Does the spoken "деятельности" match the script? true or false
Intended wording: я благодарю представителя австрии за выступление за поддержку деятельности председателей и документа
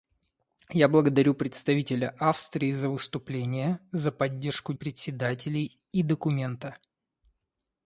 false